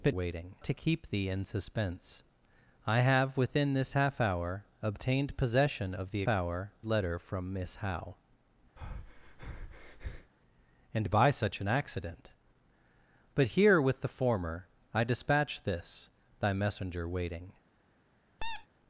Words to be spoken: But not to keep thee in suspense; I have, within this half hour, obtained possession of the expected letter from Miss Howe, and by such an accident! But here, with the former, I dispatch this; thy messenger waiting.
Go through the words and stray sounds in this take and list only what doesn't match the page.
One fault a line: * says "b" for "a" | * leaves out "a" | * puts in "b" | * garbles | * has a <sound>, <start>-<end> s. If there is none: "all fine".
* says "waiting" for "not"
* says "hour" for "expected"
* has a breath, 8.8-10.3 s
* has a squeak, 18.4-18.7 s